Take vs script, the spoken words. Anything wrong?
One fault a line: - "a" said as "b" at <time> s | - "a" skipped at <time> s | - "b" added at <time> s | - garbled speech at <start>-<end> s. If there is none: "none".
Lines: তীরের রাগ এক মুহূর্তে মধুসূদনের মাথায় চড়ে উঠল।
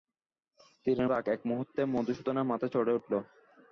none